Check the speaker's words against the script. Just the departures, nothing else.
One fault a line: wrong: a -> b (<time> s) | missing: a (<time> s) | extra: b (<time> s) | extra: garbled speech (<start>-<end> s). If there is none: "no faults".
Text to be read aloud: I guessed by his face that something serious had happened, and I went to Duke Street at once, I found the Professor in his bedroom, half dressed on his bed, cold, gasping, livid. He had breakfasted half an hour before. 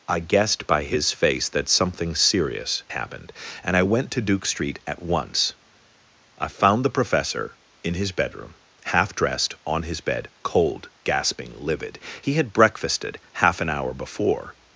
missing: had (2.8 s)